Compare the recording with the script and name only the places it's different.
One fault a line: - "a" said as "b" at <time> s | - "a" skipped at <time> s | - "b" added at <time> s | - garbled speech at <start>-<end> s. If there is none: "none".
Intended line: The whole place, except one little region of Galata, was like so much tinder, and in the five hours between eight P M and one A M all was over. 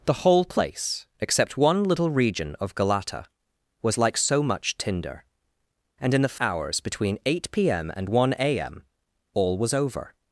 - "five" skipped at 6.3 s